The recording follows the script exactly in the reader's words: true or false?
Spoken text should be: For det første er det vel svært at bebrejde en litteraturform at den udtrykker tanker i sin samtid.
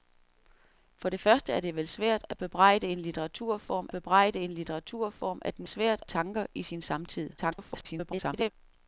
false